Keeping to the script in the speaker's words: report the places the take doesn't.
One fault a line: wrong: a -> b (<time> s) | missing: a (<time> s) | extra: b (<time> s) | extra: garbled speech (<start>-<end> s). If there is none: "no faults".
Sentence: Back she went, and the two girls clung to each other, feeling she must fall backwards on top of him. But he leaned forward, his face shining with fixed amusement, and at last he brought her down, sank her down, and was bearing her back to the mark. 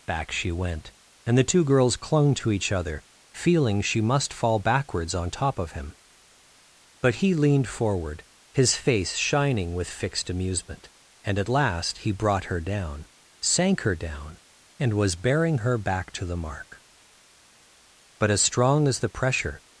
extra: But as strong as the pressure (18.2 s)